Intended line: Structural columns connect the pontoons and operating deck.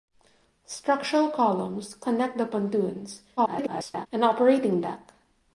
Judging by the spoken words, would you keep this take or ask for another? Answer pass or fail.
fail